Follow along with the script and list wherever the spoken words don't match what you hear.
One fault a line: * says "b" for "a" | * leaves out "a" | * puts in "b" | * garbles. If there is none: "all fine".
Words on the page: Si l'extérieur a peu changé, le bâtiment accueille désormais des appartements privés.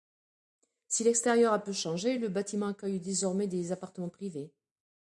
all fine